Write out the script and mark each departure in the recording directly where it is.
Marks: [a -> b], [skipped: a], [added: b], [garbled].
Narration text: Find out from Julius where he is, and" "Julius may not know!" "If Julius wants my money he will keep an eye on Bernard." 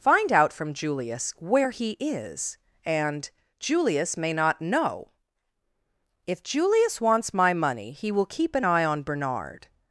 Find out from Julius where he is, and" "Julius may not know!" "If Julius wants my money he will keep an eye on Bernard."